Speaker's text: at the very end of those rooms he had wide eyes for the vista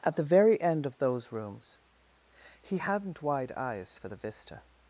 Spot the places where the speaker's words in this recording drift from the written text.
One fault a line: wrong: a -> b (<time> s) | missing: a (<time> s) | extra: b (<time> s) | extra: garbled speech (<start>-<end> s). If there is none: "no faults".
wrong: had -> hadn't (2.8 s)